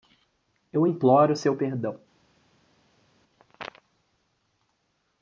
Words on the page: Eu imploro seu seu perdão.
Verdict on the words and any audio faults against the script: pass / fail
fail